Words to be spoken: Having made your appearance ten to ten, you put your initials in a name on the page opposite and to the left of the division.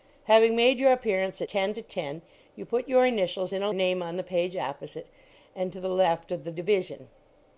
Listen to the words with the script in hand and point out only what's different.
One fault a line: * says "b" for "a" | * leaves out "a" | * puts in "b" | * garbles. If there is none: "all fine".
all fine